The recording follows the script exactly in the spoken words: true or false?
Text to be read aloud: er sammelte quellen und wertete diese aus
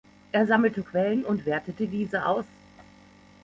true